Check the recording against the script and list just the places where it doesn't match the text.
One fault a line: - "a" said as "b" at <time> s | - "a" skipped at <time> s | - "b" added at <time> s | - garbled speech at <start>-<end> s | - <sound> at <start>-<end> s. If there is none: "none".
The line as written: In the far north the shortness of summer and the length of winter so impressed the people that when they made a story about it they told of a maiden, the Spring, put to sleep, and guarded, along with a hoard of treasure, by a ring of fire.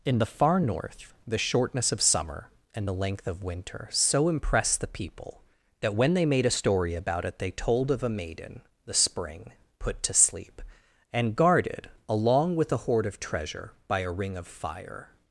none